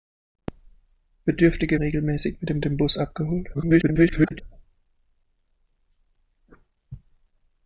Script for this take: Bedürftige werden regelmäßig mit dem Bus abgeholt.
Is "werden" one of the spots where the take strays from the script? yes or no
yes